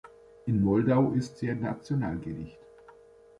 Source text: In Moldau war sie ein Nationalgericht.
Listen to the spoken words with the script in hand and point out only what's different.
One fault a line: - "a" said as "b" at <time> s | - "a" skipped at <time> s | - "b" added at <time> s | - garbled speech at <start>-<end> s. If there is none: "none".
- "war" said as "ist" at 1.1 s